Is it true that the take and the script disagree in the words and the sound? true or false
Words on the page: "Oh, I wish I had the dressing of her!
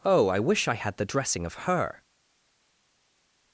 false